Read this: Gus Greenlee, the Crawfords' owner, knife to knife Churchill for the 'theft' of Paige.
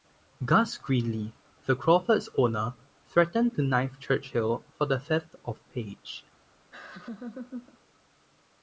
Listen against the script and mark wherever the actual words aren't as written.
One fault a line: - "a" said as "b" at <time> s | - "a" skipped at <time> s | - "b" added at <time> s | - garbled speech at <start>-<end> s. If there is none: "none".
- "knife" said as "threatened" at 3.0 s